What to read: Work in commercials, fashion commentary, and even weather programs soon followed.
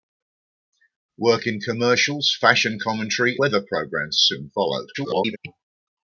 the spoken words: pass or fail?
fail